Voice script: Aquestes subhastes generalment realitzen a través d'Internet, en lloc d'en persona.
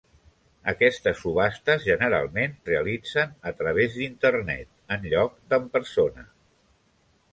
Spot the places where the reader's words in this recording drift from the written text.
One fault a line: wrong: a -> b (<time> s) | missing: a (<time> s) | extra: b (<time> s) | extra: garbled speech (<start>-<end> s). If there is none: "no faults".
no faults